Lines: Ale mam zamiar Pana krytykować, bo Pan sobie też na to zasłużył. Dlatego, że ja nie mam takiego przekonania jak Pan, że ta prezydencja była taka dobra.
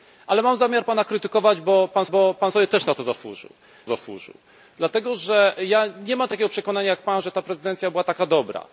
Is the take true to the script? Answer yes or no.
no